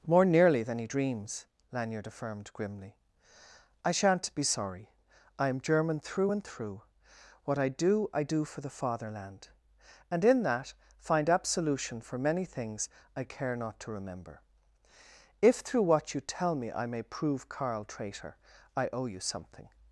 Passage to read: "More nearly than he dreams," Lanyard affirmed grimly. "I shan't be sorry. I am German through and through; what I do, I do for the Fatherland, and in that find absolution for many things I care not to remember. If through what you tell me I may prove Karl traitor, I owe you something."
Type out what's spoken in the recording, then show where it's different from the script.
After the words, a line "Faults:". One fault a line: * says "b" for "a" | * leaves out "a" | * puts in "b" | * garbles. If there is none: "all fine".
"More nearly than he dreams," Lanyard affirmed grimly. "I shan't be sorry. I am German through and through; what I do, I do for the Fatherland, and in that find absolution for many things I care not to remember. If through what you tell me I may prove Karl traitor, I owe you something."
Faults:
all fine